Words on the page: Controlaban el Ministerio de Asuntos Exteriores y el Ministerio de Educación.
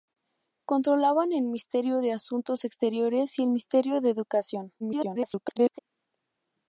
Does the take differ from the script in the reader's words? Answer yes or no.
yes